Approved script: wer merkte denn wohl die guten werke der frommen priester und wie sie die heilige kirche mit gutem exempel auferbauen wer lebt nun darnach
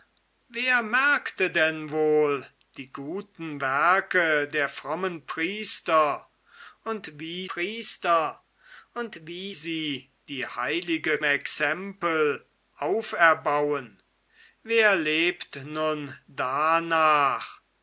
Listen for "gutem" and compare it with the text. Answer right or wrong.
wrong